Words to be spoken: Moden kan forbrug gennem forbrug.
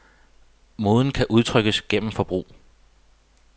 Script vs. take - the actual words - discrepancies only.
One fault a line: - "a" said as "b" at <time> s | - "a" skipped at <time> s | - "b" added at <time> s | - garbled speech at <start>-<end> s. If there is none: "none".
- "forbrug" said as "udtrykkes" at 1.3 s